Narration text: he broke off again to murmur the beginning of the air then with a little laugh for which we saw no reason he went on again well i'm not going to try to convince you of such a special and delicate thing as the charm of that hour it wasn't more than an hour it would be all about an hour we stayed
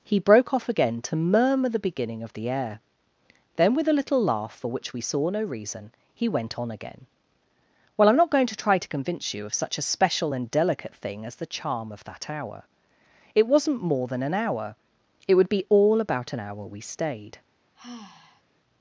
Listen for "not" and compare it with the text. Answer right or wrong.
right